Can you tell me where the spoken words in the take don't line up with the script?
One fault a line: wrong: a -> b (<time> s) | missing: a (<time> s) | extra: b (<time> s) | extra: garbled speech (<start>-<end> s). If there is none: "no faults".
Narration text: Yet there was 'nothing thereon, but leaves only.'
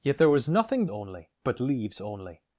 wrong: thereon -> only (0.9 s)